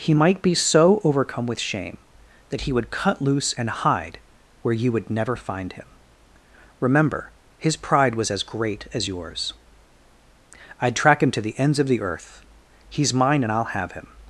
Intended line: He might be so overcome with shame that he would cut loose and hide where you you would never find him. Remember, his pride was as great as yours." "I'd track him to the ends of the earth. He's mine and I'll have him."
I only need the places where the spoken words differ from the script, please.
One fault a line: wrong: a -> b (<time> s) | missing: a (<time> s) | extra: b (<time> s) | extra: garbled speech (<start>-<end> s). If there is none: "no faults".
missing: you (4.9 s)